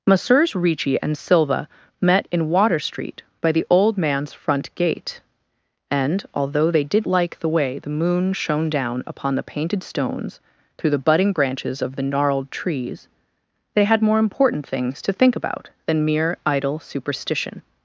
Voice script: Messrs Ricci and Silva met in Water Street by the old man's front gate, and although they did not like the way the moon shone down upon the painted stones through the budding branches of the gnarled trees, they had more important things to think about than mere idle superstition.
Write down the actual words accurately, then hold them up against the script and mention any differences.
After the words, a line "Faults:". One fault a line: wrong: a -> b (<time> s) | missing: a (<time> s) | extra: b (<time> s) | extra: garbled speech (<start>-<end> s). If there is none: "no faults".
Messrs Ricci and Silva met in Water Street by the old man's front gate, and although they did like the way the moon shone down upon the painted stones through the budding branches of the gnarled trees, they had more important things to think about than mere idle superstition.
Faults:
missing: not (7.0 s)